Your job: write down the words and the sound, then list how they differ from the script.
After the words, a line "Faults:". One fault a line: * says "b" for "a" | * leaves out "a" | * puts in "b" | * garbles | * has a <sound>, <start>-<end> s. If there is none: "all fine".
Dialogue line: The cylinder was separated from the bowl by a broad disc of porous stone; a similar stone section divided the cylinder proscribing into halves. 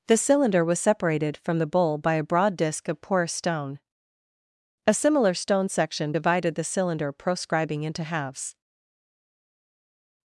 The cylinder was separated from the bowl by a broad disc of porous stone; a similar stone section divided the cylinder proscribing into halves.
Faults:
all fine